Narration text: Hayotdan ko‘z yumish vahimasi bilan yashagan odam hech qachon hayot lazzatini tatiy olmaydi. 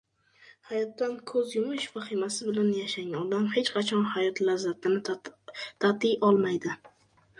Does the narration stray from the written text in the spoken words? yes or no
no